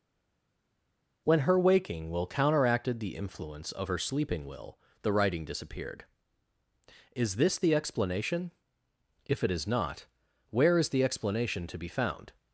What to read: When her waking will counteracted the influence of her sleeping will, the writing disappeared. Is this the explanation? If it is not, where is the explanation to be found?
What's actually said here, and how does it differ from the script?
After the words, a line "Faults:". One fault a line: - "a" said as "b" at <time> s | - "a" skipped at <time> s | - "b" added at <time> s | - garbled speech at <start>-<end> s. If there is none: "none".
When her waking will counteracted the influence of her sleeping will, the writing disappeared. Is this the explanation? If it is not, where is the explanation to be found?
Faults:
none